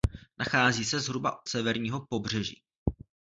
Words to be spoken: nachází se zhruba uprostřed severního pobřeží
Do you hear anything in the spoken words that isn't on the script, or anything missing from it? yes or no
yes